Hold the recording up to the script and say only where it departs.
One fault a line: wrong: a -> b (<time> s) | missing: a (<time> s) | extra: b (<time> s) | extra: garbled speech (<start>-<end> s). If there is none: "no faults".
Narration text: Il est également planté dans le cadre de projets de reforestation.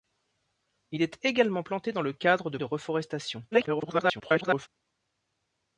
missing: projets (2.6 s)
extra: garbled speech (3.5-4.7 s)